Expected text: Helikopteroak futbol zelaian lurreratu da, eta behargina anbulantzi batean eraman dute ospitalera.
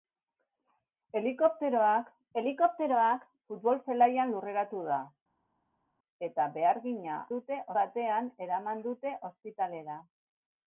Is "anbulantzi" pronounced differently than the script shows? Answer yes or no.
yes